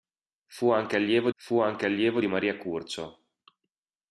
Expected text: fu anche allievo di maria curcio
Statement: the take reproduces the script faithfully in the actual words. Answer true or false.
false